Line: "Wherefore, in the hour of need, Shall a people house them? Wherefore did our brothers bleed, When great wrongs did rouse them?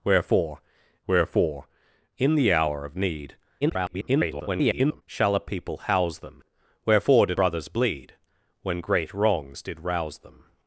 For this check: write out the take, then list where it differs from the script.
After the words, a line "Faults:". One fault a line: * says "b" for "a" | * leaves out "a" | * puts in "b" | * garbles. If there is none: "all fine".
"Wherefore wherefore, in the hour of need, [garbled] Shall a people house them? Wherefore did brothers bleed, When great wrongs did rouse them?
Faults:
* puts in "wherefore"
* garbles
* leaves out "our"